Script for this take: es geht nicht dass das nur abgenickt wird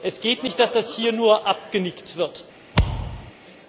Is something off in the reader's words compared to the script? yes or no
yes